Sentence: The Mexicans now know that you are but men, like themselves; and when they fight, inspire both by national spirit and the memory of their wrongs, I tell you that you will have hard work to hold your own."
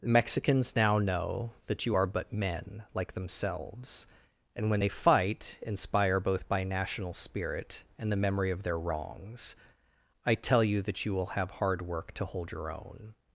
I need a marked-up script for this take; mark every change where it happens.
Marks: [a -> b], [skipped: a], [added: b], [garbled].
The Mexicans now know that you are but men, like themselves; and when they fight, inspire both by national spirit and the memory of their wrongs, I tell you that you will have hard work to hold your own."